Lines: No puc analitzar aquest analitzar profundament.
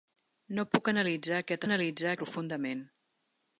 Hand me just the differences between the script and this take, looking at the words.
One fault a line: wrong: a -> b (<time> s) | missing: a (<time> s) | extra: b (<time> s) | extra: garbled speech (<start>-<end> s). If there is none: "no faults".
no faults